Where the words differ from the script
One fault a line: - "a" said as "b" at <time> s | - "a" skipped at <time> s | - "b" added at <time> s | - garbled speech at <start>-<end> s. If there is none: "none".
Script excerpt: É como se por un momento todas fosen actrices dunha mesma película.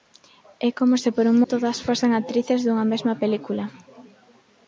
- "momento" skipped at 1.4 s